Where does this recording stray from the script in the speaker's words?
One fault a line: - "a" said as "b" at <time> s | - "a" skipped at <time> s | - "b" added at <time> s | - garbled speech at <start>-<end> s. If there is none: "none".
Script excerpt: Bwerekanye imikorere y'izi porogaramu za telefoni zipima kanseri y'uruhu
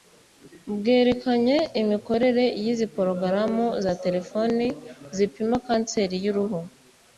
none